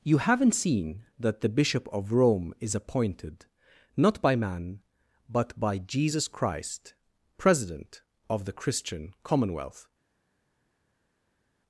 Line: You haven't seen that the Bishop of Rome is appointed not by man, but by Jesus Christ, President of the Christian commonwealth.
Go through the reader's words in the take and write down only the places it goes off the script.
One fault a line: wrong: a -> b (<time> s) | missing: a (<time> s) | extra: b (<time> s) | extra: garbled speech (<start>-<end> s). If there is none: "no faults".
no faults